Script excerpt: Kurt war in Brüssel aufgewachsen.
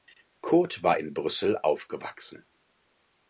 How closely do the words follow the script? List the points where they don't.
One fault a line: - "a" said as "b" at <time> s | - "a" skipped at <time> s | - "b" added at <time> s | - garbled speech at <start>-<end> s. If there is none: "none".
none